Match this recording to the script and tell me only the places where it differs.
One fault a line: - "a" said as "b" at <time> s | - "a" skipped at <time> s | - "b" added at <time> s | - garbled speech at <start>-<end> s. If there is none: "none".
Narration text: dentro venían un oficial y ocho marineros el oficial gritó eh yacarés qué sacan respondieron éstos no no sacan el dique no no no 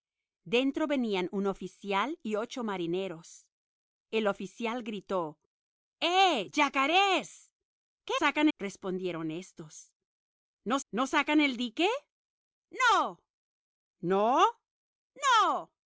none